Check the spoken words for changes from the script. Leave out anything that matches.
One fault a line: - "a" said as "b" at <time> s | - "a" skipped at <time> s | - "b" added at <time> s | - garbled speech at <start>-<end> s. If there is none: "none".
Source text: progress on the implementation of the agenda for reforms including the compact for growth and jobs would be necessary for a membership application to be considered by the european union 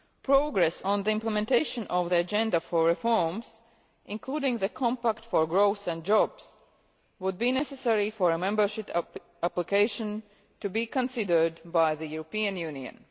none